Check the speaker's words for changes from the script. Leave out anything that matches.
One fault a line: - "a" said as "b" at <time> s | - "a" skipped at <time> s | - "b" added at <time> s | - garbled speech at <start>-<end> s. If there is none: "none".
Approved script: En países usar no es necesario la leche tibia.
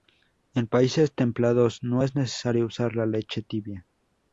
- "usar" said as "templados" at 1.1 s
- "usar" added at 2.7 s